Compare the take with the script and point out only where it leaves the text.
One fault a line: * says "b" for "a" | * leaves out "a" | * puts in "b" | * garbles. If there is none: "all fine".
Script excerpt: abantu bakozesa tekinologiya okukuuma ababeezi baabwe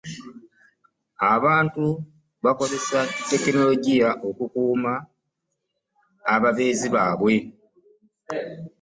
all fine